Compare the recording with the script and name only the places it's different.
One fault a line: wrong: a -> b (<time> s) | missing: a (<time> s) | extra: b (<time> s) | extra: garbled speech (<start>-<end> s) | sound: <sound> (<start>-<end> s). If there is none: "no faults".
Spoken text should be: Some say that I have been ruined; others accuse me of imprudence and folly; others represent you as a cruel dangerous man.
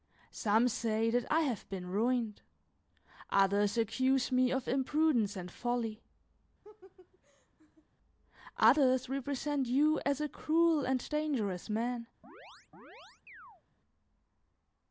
sound: laugh (6.6-7.9 s)
extra: and (10.9 s)
sound: chirp (12.2-13.6 s)